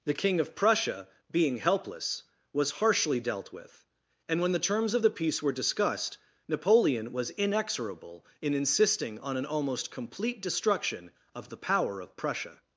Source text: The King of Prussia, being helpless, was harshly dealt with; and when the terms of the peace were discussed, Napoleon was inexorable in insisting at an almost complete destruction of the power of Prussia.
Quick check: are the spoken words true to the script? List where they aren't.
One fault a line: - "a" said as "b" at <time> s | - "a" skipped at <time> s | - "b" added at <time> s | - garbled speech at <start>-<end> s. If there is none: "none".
- "at" said as "on" at 9.2 s